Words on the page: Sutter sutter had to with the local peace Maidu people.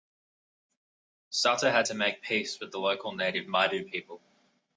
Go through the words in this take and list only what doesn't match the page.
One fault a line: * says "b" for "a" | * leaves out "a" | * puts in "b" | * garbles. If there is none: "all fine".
* leaves out "sutter"
* puts in "make peace"
* says "native" for "peace"